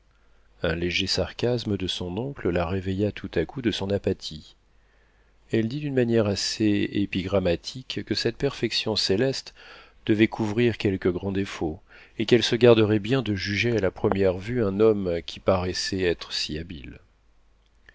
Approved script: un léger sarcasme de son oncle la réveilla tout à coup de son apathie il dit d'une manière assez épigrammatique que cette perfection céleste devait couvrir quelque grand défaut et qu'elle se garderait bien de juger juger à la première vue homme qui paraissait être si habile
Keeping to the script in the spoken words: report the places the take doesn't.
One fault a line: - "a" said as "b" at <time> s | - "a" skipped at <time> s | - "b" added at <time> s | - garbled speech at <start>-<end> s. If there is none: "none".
- "il" said as "elle" at 5.5 s
- "juger" skipped at 13.7 s
- "un" added at 14.6 s